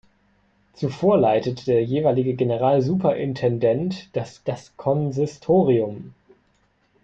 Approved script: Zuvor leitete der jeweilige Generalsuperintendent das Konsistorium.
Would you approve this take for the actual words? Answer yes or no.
no